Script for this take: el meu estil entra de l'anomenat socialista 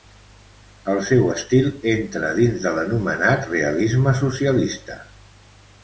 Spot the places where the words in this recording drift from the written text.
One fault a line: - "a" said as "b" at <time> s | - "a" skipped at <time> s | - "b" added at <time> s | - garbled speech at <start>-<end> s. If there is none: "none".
- "meu" said as "seu" at 1.1 s
- "dins" added at 2.4 s
- "realisme" added at 3.5 s